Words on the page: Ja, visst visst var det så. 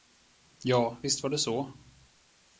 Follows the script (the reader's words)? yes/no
no